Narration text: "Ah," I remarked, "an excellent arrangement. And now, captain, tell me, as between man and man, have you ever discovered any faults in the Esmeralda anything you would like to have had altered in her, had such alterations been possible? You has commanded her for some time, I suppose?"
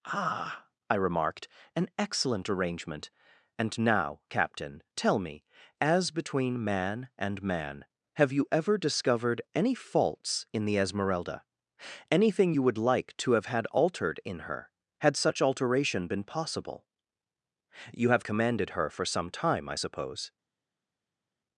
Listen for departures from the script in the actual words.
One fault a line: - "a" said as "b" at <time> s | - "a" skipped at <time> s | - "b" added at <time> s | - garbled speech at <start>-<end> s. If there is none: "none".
- "alterations" said as "alteration" at 15.4 s
- "has" said as "have" at 18.1 s